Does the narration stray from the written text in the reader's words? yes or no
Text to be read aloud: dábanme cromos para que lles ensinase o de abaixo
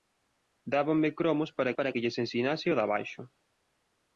yes